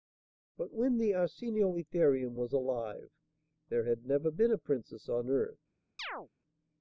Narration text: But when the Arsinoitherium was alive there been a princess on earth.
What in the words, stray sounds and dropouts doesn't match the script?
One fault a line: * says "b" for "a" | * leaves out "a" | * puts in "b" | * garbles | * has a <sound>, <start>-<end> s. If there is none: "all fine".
* puts in "had never"
* has a chirp, 6.0-6.3 s